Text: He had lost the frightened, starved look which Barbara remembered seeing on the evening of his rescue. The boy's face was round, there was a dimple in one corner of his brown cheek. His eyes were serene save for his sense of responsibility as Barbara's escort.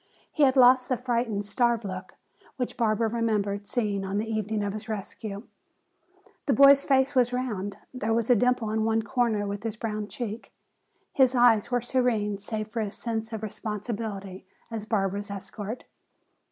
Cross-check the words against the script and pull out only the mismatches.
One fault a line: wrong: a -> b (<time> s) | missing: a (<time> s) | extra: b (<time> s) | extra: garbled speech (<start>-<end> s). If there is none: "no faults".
no faults